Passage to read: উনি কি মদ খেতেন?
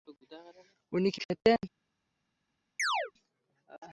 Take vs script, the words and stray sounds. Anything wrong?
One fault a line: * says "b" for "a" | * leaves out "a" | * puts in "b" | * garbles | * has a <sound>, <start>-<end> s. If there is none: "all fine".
* leaves out "মদ"
* has a chirp, 2.8-3.1 s